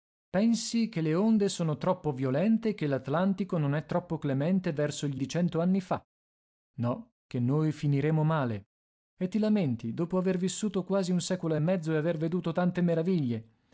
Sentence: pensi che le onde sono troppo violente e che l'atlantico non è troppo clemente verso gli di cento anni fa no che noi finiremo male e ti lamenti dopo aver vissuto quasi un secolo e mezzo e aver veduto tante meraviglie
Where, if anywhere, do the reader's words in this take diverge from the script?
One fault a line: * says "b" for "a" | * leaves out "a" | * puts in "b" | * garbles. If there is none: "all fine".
all fine